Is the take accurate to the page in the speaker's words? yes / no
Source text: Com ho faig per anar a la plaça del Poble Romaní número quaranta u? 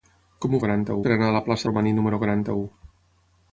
no